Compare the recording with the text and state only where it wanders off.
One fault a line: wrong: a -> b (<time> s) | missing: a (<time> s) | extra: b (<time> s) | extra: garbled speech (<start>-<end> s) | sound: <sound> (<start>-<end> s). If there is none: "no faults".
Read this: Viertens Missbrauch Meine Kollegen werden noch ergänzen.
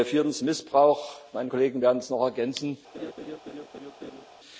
extra: es (2.0 s)
sound: laugh (2.9-4.3 s)